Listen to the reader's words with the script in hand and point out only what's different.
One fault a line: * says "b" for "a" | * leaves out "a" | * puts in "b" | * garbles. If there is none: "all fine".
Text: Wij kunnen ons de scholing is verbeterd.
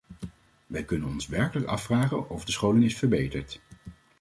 * puts in "werkelijk afvragen of"